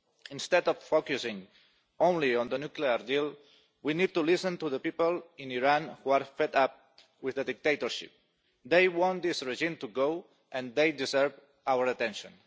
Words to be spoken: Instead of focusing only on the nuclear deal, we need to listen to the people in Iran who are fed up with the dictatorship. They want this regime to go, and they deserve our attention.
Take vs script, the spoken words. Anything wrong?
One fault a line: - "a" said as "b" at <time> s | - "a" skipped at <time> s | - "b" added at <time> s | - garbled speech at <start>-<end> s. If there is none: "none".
none